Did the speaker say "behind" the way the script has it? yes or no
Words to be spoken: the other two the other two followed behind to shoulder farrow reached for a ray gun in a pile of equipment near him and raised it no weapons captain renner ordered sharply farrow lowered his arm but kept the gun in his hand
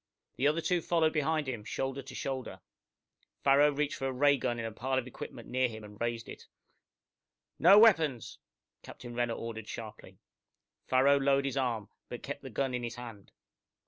no